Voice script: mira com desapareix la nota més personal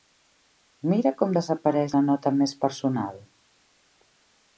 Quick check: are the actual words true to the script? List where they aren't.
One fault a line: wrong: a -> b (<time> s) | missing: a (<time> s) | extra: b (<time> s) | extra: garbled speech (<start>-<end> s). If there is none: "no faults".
no faults